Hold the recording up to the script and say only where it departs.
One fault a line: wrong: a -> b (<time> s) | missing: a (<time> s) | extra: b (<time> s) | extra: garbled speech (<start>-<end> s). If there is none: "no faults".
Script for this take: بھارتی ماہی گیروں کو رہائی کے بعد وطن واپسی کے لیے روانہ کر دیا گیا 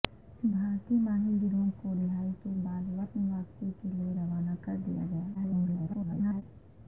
extra: garbled speech (5.3-6.4 s)